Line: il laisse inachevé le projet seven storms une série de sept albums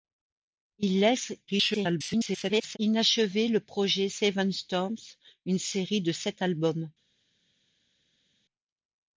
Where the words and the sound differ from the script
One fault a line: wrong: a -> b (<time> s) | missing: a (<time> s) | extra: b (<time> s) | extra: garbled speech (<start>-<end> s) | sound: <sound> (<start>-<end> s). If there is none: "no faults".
extra: garbled speech (1.5-2.8 s)